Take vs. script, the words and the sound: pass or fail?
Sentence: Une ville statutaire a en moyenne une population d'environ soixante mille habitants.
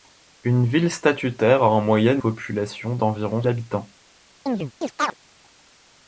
fail